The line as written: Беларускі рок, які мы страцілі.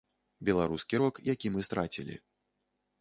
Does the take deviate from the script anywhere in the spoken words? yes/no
no